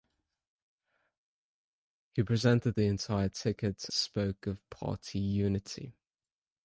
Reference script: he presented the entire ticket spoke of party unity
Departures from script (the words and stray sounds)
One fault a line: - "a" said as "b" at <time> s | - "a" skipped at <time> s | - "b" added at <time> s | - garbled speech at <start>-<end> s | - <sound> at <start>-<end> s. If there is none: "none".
none